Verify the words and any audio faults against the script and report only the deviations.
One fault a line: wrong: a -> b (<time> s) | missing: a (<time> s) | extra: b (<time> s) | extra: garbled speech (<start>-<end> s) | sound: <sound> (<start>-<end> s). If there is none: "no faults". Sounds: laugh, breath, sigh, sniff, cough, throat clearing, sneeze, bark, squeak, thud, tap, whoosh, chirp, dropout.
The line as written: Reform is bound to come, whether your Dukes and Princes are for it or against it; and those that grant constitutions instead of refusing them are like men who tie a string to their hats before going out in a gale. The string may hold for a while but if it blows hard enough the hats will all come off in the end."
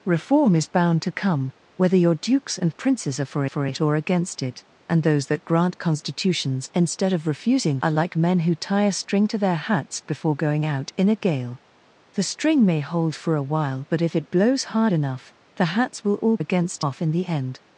extra: for (3.5 s)
missing: them (7.8 s)
wrong: come -> against (16.4 s)